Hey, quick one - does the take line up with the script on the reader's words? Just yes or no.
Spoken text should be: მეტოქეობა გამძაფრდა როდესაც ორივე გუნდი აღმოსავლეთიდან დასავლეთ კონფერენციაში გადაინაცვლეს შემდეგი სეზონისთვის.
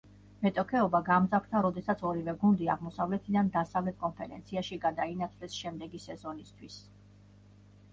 yes